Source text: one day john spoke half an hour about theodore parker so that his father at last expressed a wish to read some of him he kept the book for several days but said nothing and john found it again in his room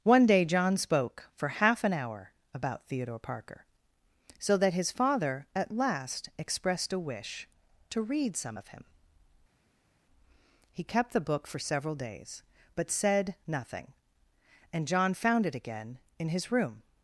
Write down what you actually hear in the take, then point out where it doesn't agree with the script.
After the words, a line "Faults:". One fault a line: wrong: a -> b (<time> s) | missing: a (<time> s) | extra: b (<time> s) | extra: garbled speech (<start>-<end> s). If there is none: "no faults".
one day john spoke for half an hour about theodore parker so that his father at last expressed a wish to read some of him he kept the book for several days but said nothing and john found it again in his room
Faults:
extra: for (1.4 s)